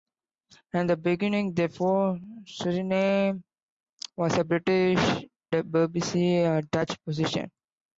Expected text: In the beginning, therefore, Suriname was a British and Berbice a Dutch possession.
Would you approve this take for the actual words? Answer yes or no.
no